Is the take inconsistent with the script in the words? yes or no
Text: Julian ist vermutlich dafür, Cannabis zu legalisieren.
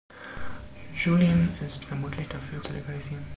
yes